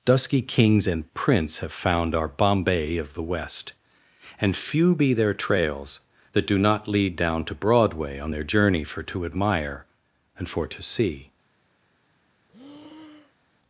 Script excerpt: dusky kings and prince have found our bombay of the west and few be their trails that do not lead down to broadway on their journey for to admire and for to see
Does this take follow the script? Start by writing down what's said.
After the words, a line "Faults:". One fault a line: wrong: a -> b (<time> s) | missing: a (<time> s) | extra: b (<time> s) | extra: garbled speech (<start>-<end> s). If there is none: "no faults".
dusky kings and prince have found our bombay of the west and few be their trails that do not lead down to broadway on their journey for to admire and for to see
Faults:
no faults